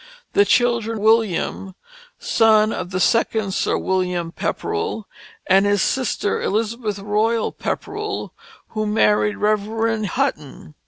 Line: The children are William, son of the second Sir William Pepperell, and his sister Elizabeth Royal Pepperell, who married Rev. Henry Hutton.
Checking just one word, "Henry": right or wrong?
wrong